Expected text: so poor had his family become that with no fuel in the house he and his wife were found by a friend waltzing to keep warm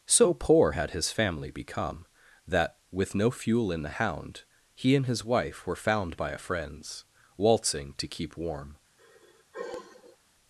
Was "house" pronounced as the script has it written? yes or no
no